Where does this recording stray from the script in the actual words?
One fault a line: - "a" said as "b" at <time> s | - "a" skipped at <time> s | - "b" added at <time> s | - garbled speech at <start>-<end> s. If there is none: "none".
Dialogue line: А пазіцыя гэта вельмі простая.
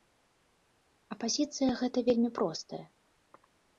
none